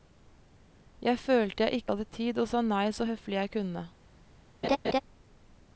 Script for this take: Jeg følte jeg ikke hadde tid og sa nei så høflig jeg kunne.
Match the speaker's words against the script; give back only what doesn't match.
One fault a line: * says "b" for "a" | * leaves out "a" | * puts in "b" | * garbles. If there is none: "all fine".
all fine